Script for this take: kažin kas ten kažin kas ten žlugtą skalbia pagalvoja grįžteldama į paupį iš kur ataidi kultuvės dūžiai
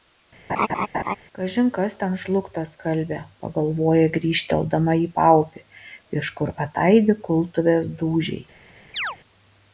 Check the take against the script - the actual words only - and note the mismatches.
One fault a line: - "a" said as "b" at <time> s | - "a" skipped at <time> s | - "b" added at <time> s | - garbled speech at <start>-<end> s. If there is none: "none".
- "kažin kas ten" skipped at 2.2 s